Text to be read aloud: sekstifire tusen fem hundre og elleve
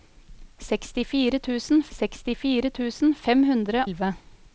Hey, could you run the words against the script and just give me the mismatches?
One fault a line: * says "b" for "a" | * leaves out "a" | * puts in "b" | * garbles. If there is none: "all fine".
* puts in "sekstifire tusen"
* leaves out "og"